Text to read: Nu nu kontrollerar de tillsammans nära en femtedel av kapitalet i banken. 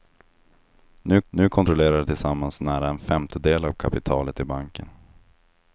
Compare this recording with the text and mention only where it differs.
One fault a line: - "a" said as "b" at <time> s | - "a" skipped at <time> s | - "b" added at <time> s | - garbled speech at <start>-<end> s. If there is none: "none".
none